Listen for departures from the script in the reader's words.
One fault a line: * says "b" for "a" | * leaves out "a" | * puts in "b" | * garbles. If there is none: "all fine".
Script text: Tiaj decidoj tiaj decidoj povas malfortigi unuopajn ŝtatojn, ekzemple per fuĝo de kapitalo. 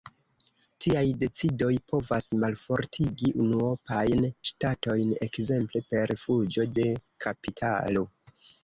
* leaves out "tiaj decidoj"